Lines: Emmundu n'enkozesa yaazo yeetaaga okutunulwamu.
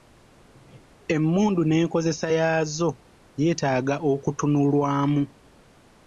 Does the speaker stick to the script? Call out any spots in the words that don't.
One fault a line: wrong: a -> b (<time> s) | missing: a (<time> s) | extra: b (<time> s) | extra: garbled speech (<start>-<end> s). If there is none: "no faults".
no faults